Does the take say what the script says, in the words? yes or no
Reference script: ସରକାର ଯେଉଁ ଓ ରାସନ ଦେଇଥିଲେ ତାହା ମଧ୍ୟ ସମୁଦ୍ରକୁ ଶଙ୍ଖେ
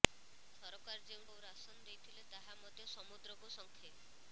yes